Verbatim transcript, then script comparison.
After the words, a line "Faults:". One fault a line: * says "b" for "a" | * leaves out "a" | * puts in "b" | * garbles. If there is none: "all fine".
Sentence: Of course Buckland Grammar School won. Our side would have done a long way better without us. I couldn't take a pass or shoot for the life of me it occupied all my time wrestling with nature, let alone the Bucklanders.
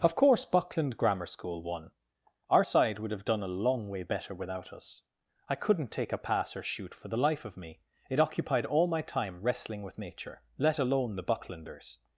Of course Buckland Grammar School won. Our side would have done a long way better without us. I couldn't take a pass or shoot for the life of me it occupied all my time wrestling with nature, let alone the Bucklanders.
Faults:
all fine